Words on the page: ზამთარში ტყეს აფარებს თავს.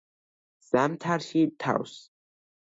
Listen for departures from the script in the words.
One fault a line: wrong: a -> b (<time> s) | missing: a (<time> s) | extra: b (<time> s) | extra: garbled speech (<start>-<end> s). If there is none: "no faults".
missing: ტყეს აფარებს (1.4 s)